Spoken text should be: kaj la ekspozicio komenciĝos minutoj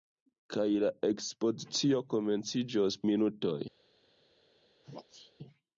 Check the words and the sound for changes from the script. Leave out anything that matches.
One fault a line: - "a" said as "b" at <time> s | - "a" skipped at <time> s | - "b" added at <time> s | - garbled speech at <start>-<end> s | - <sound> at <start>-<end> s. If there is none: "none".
- sneeze at 4.8-5.3 s